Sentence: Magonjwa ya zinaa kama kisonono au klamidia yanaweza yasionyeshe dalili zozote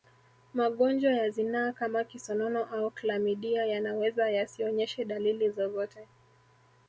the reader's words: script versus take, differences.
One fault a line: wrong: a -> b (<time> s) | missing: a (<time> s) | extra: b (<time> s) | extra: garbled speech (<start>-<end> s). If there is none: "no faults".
no faults